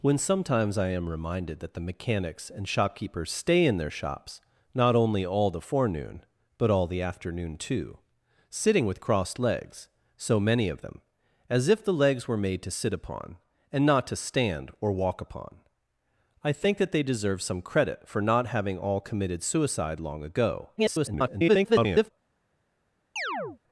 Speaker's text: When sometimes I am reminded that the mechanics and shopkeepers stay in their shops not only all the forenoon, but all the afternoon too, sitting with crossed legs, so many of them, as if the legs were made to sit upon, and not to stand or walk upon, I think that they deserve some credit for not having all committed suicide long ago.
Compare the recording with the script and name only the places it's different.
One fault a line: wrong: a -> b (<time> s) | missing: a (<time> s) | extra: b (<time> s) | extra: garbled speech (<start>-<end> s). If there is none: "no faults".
extra: garbled speech (20.8-22.1 s)